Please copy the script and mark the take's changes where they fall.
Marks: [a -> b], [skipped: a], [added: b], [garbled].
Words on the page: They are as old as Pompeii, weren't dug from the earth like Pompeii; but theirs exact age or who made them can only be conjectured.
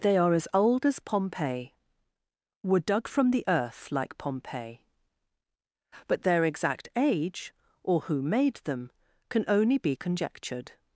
They are as old as Pompeii, [weren't -> were] dug from the earth like Pompeii; but [theirs -> their] exact age or who made them can only be conjectured.